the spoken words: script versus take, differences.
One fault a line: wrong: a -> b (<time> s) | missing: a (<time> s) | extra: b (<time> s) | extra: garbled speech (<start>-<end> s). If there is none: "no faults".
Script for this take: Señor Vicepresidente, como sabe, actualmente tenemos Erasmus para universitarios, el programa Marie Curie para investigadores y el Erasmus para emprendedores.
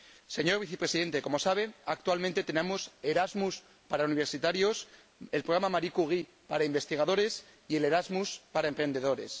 no faults